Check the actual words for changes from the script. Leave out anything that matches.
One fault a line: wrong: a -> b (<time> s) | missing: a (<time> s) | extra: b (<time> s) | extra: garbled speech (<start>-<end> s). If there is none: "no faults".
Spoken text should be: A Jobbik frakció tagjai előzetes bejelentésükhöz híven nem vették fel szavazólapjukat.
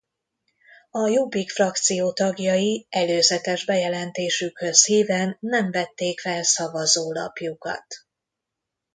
no faults